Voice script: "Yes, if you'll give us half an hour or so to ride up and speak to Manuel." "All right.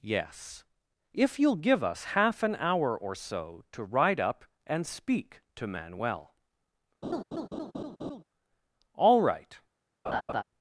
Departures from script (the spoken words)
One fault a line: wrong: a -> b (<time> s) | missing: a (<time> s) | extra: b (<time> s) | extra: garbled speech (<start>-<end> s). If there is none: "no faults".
no faults